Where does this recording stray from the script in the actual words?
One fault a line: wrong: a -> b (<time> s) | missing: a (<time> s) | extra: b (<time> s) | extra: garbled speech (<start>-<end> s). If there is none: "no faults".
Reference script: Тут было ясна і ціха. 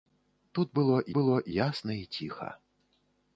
extra: было (1.2 s)